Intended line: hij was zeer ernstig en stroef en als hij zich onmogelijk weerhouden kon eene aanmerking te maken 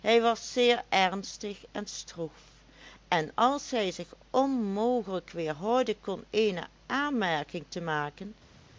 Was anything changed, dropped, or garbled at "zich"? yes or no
no